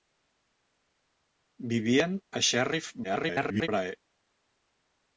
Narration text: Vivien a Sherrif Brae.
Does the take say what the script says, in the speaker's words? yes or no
no